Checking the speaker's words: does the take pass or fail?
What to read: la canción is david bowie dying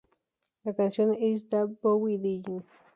pass